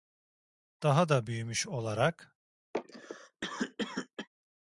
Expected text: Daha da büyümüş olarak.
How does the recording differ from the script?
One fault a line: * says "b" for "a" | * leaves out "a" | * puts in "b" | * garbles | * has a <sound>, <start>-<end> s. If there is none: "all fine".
* has a cough, 2.7-4.3 s